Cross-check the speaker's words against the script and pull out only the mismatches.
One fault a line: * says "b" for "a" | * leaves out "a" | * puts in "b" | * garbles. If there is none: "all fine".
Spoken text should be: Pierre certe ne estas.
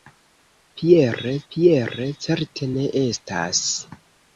* puts in "pierre"